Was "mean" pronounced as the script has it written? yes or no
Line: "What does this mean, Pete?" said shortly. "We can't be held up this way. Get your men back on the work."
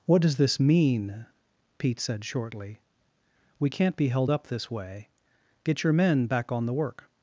yes